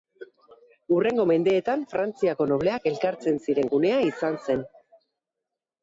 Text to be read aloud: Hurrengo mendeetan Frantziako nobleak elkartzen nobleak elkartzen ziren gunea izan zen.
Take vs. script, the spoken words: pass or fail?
fail